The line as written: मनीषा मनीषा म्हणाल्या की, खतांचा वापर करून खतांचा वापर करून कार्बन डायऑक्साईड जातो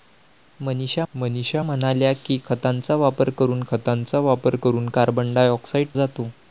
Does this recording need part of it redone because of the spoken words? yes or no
no